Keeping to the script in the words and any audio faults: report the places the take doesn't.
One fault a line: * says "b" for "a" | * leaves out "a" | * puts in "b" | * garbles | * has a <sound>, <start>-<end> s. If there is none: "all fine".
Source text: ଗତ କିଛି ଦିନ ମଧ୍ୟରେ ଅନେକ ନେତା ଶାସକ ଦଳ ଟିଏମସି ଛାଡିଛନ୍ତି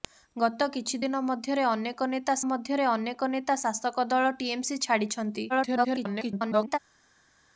* puts in "ମଧ୍ୟରେ ଅନେକ ନେତା"
* garbles